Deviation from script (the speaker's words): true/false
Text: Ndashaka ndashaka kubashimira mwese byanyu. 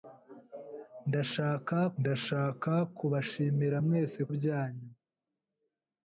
false